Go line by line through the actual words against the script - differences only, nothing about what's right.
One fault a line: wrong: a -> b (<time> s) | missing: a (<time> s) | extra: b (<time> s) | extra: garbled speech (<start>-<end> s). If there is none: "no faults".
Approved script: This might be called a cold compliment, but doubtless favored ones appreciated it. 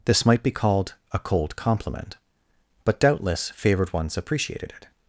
no faults